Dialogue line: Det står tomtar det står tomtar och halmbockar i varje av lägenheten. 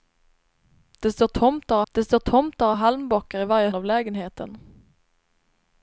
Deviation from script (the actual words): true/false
false